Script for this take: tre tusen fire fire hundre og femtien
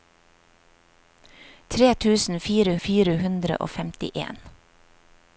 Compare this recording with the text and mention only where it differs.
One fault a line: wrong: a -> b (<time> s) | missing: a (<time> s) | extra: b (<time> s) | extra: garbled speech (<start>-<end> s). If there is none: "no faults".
no faults